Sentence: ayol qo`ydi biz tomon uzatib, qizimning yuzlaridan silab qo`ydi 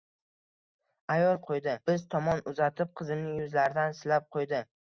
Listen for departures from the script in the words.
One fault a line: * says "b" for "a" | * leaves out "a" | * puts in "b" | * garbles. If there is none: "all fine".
all fine